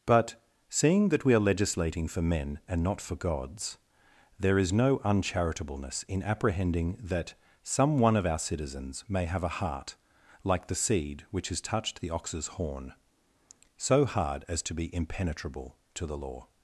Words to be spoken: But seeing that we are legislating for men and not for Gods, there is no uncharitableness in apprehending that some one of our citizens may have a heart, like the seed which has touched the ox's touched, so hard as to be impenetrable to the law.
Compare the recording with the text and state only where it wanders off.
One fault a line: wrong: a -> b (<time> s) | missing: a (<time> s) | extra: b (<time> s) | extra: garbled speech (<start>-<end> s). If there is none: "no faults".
wrong: touched -> horn (12.5 s)